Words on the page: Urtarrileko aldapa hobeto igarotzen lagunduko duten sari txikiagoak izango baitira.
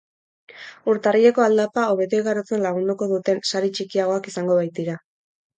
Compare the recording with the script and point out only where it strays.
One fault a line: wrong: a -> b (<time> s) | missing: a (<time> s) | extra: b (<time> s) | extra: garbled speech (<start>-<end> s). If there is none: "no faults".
no faults